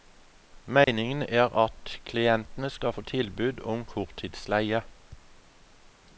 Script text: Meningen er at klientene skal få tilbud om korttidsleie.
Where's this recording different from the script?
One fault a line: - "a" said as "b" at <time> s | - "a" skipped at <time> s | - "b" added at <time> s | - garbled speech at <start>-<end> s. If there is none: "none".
none